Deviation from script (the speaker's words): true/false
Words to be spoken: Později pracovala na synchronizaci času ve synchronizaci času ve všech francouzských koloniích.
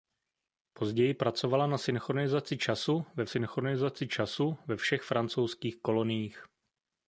false